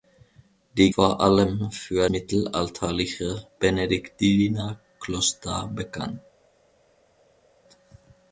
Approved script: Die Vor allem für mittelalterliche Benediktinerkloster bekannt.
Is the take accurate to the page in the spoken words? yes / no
yes